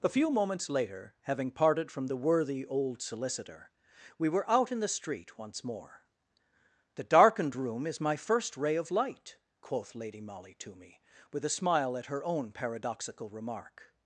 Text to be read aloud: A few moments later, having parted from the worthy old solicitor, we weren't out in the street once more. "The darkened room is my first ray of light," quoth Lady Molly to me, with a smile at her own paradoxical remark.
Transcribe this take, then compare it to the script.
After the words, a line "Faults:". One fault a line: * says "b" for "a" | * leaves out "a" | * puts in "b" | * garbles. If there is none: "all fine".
A few moments later, having parted from the worthy old solicitor, we were out in the street once more. "The darkened room is my first ray of light," quoth Lady Molly to me, with a smile at her own paradoxical remark.
Faults:
* says "were" for "weren't"